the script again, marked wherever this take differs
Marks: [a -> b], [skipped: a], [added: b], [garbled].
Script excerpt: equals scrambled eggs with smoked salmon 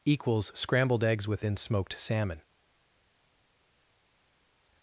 equals scrambled eggs [with -> within] smoked salmon